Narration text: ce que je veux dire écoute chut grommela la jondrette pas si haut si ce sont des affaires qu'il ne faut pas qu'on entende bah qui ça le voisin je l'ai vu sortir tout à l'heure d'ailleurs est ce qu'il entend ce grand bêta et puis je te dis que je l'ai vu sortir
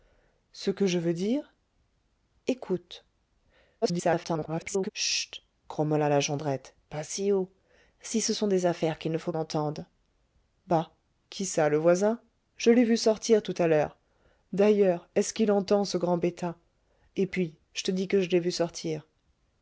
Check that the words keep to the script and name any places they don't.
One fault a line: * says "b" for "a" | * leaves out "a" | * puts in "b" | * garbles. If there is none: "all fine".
* garbles
* leaves out "pas qu'on"